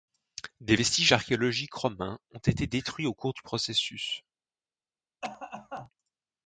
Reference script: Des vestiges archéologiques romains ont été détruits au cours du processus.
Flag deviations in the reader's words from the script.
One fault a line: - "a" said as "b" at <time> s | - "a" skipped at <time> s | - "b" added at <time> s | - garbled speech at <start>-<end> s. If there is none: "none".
none